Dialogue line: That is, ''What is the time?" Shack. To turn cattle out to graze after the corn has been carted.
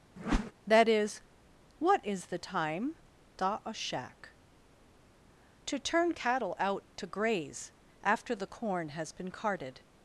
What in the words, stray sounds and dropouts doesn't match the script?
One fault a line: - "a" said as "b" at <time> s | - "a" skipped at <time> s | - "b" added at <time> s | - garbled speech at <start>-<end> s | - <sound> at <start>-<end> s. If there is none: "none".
- whoosh at 0.2-0.5 s
- "da a" added at 3.4 s